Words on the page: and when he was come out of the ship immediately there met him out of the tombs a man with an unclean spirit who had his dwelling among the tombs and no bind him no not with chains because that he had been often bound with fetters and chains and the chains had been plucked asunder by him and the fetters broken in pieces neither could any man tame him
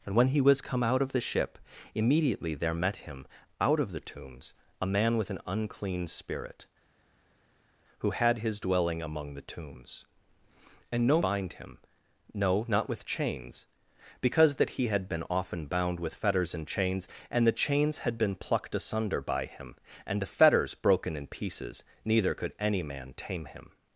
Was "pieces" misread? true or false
false